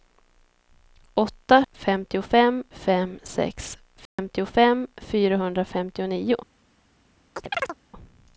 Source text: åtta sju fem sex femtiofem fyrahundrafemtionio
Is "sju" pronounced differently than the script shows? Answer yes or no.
yes